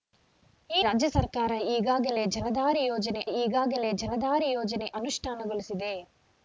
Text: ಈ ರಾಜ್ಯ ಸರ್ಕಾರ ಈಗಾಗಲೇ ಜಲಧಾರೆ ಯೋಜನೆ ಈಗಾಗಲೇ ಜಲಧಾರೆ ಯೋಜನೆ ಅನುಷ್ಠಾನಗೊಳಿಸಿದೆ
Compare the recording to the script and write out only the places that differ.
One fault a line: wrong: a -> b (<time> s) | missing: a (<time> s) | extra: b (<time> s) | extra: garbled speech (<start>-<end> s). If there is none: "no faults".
no faults